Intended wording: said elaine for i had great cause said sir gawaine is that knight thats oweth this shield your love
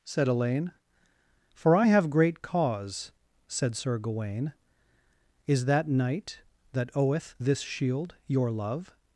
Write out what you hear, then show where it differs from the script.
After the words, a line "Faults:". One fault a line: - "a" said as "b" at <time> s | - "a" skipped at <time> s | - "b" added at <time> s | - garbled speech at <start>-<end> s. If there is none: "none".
said elaine for i have great cause said sir gawaine is that knight that oweth this shield your love
Faults:
- "had" said as "have" at 1.9 s
- "thats" said as "that" at 6.7 s